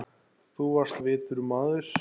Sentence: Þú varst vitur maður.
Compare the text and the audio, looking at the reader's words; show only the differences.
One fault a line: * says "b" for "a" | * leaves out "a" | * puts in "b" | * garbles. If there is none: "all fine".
all fine